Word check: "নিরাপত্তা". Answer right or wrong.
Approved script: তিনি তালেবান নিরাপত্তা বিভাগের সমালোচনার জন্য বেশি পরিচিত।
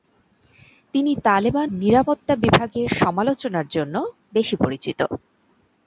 right